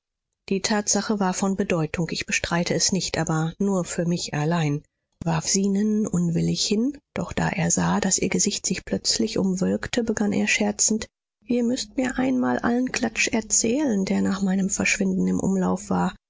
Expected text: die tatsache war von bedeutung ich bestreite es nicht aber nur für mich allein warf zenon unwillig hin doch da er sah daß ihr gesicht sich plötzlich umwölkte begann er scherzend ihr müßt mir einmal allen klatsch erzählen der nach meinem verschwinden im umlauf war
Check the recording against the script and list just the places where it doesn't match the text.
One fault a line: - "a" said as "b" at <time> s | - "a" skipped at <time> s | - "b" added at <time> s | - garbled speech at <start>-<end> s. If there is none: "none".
none